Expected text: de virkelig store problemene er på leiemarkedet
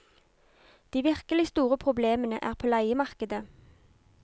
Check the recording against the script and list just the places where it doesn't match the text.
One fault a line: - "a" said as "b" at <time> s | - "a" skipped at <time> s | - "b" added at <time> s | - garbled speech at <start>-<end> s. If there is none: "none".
none